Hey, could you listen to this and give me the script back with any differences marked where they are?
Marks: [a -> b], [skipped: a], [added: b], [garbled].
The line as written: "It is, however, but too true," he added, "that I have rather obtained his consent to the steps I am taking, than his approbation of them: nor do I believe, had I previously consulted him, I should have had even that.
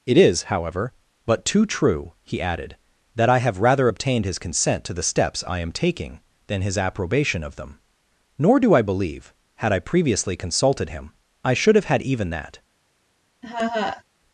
"It is, however, but too true," he added, "that I have rather obtained his consent to the steps I am taking, than his approbation of them: nor do I believe, had I previously consulted him, I should have had even that.